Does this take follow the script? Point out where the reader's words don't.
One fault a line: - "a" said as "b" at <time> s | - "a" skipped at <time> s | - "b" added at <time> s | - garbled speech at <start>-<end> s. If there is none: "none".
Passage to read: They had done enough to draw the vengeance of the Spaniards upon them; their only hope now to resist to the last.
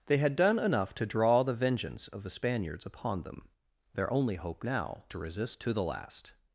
none